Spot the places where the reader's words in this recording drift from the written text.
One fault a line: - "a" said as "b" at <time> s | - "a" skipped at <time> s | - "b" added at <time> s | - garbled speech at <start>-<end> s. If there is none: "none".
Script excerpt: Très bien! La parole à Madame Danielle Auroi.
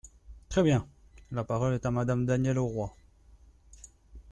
- "est" added at 1.7 s